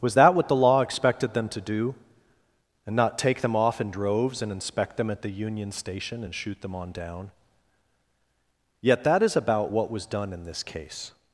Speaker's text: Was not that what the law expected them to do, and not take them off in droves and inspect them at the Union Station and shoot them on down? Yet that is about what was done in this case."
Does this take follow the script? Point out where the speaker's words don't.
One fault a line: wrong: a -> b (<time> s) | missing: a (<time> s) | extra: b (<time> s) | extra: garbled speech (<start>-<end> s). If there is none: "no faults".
missing: not (0.2 s)